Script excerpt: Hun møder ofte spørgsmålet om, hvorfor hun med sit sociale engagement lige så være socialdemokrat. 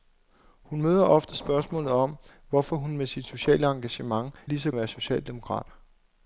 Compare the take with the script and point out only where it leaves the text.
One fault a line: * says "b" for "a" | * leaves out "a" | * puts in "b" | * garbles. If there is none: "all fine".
all fine